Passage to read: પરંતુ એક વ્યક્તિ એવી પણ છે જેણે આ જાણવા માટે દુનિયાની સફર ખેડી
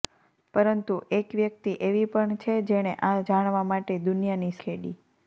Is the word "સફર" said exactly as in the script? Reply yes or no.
no